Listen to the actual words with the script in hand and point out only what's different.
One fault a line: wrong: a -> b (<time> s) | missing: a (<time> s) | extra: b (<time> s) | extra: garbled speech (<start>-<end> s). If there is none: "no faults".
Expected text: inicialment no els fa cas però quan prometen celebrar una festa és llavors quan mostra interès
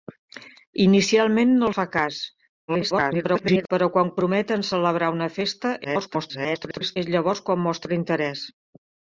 missing: els (1.7 s)
extra: garbled speech (2.7-3.7 s)
extra: garbled speech (5.8-7.0 s)